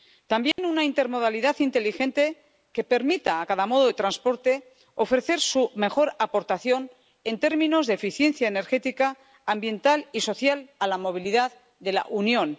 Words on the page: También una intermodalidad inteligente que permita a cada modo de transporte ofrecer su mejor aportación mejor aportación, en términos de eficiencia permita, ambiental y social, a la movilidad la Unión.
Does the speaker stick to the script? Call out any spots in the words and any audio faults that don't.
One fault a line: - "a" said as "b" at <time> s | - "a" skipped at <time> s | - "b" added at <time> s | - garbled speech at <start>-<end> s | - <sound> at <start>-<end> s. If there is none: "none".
- dropout at 0.5-0.6 s
- "mejor aportación" skipped at 6.9 s
- "permita" said as "energética" at 8.5 s
- "de" added at 11.8 s